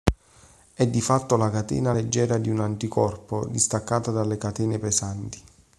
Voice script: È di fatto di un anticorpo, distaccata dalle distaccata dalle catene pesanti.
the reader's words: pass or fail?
fail